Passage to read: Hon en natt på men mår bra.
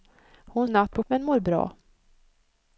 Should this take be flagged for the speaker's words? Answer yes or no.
no